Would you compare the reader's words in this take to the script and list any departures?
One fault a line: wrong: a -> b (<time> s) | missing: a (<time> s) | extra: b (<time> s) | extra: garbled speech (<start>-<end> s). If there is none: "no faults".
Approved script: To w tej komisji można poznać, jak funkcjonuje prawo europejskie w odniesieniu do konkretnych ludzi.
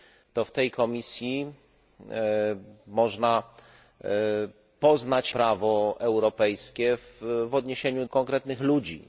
missing: jak funkcjonuje (5.3 s)
missing: do (8.0 s)